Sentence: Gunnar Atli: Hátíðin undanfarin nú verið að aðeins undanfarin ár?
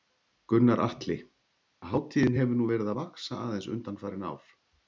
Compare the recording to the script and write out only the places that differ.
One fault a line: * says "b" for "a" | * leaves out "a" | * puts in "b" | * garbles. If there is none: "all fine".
* says "hefur" for "undanfarin"
* puts in "vaxa"